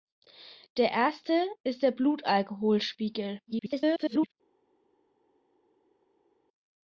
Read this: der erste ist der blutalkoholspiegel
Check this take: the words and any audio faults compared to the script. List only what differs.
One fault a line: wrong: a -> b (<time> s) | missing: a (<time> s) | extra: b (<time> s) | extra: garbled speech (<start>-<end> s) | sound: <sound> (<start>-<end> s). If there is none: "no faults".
extra: garbled speech (3.5-4.3 s)